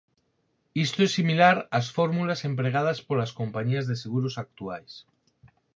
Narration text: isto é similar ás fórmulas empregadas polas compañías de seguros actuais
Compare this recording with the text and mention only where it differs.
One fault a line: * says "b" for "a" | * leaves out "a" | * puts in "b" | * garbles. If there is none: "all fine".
all fine